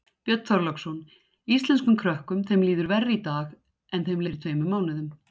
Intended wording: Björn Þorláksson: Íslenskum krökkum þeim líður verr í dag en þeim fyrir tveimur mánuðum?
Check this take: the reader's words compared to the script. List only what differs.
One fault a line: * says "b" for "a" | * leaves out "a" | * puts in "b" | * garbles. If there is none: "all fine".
all fine